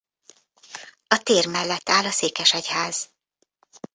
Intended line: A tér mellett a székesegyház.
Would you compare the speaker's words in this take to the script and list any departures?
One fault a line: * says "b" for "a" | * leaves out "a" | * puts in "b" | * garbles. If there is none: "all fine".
* puts in "áll"